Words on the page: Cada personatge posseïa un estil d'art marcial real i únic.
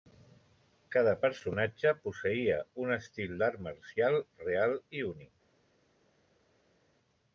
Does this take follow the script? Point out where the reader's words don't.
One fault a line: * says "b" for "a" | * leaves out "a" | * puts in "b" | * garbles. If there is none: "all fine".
all fine